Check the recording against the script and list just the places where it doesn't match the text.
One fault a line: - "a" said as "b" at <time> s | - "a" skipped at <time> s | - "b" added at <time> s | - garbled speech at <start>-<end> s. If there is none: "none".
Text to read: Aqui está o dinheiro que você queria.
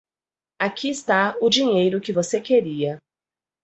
none